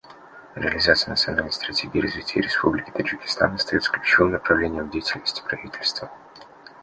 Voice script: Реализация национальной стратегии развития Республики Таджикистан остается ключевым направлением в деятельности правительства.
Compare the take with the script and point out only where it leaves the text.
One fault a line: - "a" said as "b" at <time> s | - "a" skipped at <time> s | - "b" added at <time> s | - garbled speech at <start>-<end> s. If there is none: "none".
none